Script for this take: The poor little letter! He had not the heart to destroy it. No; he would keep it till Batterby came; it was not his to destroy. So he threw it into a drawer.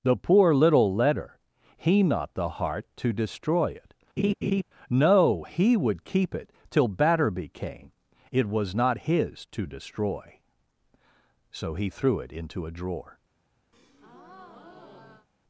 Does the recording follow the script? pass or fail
fail